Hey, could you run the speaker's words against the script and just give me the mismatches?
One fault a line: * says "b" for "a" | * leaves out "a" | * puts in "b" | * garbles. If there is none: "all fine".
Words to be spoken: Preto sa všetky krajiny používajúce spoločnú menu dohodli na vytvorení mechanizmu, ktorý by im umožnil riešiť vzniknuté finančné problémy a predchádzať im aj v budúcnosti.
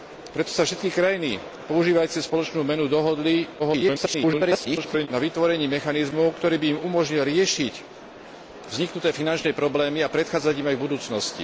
* garbles